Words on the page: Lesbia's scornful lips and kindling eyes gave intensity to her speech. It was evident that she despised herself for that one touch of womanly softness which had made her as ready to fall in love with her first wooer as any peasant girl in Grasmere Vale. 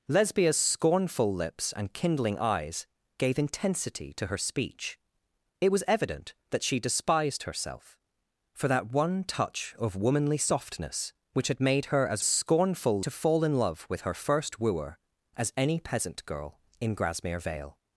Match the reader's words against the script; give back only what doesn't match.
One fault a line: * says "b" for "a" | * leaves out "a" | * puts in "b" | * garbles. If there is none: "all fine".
* says "scornful" for "ready"